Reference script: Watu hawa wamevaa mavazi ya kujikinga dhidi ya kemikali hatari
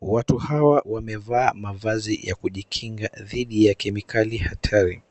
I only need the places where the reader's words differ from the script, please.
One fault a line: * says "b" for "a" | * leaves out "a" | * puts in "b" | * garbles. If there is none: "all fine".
all fine